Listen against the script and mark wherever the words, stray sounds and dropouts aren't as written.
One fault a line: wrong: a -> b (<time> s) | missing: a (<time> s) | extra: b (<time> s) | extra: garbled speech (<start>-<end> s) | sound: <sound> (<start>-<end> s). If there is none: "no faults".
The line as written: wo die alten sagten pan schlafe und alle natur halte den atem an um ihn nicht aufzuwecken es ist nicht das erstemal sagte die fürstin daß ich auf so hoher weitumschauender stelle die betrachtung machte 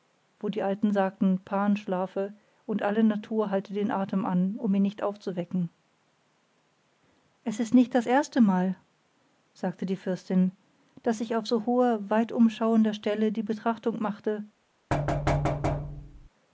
sound: thud (14.9-16.3 s)